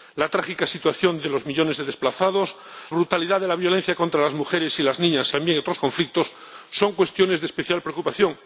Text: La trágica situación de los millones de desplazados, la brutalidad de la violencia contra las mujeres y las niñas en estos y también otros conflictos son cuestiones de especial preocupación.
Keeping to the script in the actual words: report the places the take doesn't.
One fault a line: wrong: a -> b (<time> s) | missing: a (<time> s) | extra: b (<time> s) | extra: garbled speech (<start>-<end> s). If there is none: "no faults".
missing: la (2.5 s)
missing: en estos y (5.3 s)